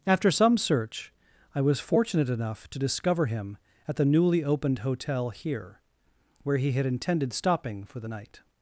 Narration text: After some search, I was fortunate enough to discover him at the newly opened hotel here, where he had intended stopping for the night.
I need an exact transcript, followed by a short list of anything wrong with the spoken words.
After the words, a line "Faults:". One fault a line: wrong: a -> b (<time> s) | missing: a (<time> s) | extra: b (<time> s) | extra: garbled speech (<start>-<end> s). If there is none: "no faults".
After some search, I was fortunate enough to discover him at the newly opened hotel here, where he had intended stopping for the night.
Faults:
no faults